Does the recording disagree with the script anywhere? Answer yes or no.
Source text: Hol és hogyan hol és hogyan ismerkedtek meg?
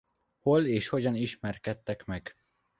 yes